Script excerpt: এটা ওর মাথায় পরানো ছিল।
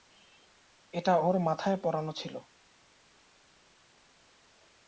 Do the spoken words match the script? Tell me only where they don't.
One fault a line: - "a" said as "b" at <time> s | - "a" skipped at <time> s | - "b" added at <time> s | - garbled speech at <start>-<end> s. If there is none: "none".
none